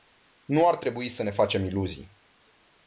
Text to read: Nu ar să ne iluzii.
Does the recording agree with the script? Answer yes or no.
no